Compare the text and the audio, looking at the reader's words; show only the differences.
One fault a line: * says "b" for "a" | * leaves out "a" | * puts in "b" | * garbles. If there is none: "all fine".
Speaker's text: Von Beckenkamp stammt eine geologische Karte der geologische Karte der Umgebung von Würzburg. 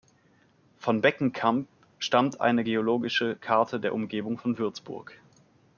* leaves out "geologische Karte der"